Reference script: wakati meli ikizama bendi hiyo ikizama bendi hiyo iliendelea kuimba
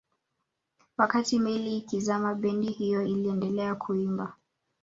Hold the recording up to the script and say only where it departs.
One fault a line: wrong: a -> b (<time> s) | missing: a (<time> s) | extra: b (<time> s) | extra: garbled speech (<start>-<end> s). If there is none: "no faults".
missing: ikizama bendi hiyo (3.0 s)